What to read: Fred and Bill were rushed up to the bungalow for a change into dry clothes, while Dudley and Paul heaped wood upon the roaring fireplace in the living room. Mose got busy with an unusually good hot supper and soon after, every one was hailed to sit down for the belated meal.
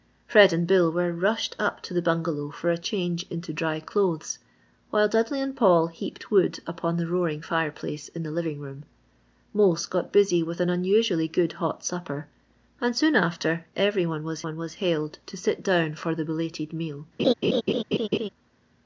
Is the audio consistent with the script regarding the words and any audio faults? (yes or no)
no